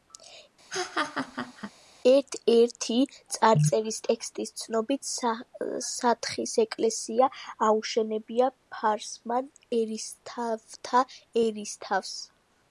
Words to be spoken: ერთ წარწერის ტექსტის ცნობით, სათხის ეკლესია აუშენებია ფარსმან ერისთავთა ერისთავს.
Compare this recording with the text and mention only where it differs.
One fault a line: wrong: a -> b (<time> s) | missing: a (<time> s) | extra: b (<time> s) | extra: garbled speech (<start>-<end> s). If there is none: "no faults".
extra: ერთი (2.5 s)